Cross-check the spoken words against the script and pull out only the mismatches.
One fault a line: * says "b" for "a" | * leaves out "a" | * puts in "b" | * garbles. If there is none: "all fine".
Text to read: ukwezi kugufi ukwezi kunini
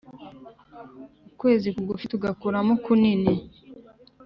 * says "tugakuramo" for "ukwezi"